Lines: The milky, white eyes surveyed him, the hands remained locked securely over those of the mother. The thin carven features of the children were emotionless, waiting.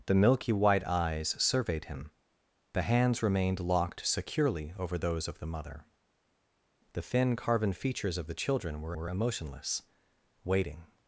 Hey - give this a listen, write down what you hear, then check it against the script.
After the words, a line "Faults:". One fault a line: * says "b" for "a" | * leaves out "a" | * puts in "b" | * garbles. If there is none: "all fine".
The milky, white eyes surveyed him, the hands remained locked securely over those of the mother. The thin carven features of the children were were emotionless, waiting.
Faults:
* puts in "were"